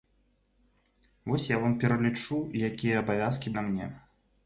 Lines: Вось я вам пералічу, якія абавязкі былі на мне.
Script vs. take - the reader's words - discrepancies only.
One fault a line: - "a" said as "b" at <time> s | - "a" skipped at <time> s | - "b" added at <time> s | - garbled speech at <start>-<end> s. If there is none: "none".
- "былі" skipped at 3.5 s